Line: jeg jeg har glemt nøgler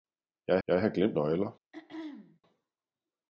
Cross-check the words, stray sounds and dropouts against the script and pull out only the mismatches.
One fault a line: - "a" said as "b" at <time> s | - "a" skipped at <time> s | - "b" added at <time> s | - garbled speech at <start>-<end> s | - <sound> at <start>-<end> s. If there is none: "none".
- throat clearing at 1.7-2.4 s